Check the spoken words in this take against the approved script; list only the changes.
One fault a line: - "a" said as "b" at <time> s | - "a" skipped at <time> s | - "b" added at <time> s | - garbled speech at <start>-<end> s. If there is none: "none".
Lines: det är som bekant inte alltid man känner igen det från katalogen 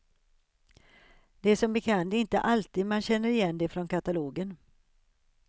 none